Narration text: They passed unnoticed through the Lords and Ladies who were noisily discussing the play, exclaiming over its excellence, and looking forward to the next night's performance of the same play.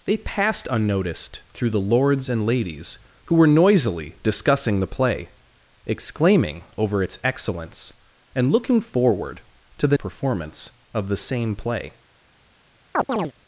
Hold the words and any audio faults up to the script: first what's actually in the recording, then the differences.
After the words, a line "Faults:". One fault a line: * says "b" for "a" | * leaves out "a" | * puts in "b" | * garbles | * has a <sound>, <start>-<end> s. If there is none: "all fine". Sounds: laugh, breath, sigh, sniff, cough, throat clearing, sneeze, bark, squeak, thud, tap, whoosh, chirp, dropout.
They passed unnoticed through the Lords and Ladies who were noisily discussing the play, exclaiming over its excellence, and looking forward to the performance of the same play.
Faults:
* leaves out "next night's"
* has a chirp, 12.9-13.3 s